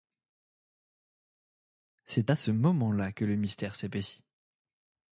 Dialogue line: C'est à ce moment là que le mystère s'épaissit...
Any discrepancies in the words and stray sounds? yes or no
no